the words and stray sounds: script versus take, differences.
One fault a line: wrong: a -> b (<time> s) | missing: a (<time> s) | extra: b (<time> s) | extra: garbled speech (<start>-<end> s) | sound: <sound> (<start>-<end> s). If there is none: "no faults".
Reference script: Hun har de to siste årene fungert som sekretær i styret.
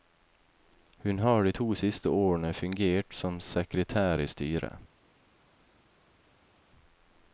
no faults